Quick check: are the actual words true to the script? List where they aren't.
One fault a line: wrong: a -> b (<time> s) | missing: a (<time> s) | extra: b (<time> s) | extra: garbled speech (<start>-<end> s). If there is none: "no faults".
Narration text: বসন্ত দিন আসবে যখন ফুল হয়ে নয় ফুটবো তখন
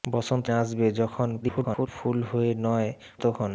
missing: দিন (0.5 s)
extra: garbled speech (1.4-1.9 s)
missing: ফুটবো (2.9 s)